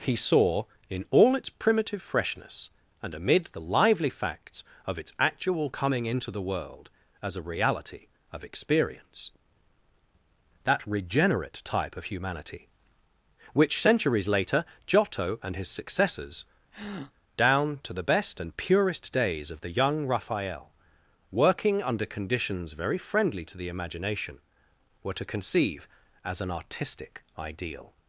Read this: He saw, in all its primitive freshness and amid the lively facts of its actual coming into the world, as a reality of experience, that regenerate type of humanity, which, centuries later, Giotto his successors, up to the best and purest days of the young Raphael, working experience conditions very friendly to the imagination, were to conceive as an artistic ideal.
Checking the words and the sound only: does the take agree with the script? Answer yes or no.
no